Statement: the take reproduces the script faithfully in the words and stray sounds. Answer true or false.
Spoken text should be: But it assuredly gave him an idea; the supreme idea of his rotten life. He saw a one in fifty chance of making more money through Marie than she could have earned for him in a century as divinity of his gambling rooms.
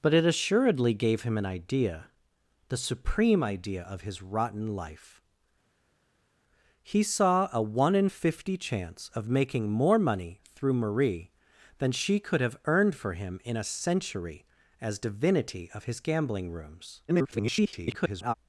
false